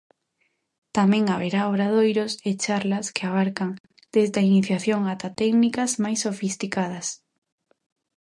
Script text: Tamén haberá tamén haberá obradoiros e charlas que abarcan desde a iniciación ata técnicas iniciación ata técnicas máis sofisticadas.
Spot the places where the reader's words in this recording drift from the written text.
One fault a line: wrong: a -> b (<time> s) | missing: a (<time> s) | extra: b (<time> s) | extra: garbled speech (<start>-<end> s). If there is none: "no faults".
missing: tamén haberá (1.6 s)
missing: iniciación ata técnicas (5.9 s)